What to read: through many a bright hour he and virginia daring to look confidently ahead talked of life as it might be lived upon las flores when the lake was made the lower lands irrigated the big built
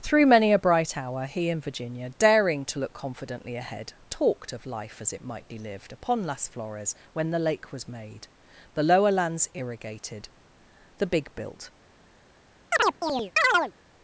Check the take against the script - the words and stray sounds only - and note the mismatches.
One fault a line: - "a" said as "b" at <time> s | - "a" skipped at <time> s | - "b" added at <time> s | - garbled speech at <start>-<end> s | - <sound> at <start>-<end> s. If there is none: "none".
- chirp at 12.7-13.7 s